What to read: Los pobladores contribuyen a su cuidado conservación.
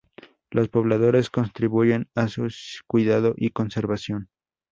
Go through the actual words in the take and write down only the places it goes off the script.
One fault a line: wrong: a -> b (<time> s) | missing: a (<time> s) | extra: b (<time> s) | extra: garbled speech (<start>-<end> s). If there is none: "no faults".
extra: y (3.4 s)